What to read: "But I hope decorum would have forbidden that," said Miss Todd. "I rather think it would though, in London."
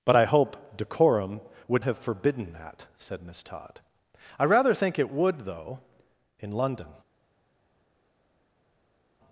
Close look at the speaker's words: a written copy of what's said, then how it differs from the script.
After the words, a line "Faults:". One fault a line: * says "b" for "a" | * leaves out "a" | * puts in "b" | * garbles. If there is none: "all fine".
"But I hope decorum would have forbidden that," said Miss Todd. "I rather think it would though, in London."
Faults:
all fine